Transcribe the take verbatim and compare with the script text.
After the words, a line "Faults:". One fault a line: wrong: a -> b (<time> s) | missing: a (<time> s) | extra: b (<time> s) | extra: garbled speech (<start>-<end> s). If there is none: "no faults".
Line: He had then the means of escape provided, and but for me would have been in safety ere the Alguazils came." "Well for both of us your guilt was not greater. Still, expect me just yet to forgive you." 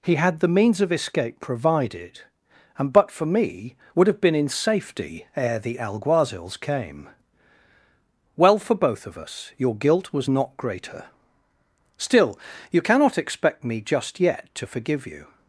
He had the means of escape provided, and but for me would have been in safety ere the Alguazils came." "Well for both of us your guilt was not greater. Still, you cannot expect me just yet to forgive you."
Faults:
missing: then (0.4 s)
extra: you cannot (12.7 s)